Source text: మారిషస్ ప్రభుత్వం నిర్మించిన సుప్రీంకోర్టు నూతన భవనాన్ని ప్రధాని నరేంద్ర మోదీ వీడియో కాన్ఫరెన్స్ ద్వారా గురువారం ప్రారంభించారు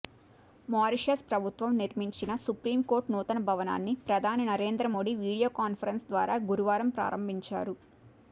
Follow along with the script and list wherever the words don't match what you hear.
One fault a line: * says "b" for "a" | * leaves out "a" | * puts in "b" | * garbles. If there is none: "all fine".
all fine